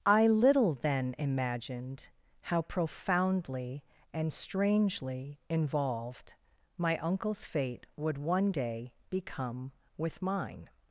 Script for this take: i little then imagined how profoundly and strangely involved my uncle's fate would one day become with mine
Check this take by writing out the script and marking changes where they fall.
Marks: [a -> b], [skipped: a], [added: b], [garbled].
i little then imagined how profoundly and strangely involved my uncle's fate would one day become with mine